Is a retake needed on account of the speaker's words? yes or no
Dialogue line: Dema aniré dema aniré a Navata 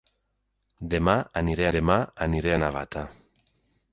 no